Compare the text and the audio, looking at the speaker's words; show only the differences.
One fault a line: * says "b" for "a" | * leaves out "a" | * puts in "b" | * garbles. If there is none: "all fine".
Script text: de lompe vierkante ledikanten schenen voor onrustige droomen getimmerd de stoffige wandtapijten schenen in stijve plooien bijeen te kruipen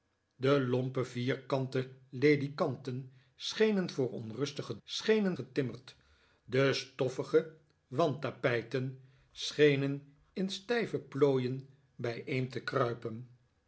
* says "schenen" for "droomen"